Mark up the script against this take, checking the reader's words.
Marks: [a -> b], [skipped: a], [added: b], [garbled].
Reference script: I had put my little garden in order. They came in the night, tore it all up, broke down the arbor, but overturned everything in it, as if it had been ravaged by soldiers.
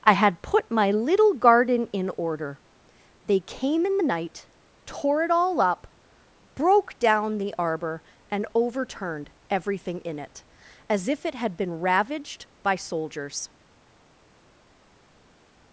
I had put my little garden in order. They came in the night, tore it all up, broke down the arbor, [but -> and] overturned everything in it, as if it had been ravaged by soldiers.